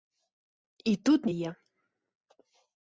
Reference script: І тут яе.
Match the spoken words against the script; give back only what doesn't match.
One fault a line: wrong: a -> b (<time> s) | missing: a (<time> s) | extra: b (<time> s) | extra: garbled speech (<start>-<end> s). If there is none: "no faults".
no faults